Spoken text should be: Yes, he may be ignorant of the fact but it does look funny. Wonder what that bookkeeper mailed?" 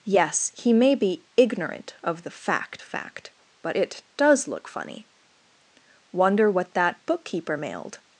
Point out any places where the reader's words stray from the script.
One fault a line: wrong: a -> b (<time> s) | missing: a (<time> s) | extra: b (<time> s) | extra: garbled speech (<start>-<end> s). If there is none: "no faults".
extra: fact (2.8 s)